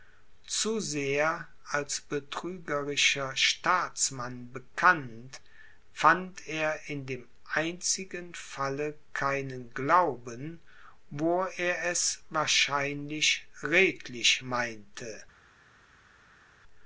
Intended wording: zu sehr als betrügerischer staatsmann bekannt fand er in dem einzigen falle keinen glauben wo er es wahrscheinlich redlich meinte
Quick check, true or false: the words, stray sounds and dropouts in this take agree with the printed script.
true